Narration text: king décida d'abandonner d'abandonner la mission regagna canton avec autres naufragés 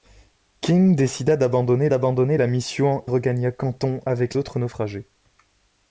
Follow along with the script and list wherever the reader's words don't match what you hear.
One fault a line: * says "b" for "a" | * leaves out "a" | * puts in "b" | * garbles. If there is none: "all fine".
all fine